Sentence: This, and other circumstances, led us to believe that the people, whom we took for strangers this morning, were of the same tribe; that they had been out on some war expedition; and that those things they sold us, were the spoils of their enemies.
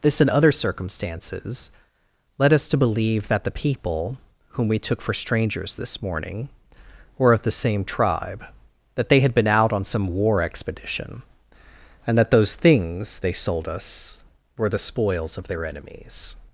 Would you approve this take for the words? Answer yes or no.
yes